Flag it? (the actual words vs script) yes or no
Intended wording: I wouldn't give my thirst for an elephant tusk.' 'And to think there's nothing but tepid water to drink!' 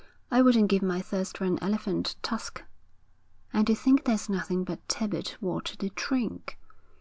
no